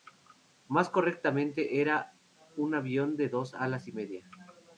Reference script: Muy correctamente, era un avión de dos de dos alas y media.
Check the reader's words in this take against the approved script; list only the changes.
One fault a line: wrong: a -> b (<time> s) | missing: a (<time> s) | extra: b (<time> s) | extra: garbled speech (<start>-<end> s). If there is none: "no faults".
wrong: Muy -> Más (0.7 s)
missing: de dos (3.5 s)